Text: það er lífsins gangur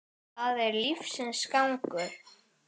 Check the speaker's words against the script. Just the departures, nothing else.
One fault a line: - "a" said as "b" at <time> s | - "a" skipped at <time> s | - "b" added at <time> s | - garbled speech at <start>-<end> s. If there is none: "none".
none